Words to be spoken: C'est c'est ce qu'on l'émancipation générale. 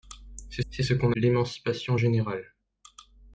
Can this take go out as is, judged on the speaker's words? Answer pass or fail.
pass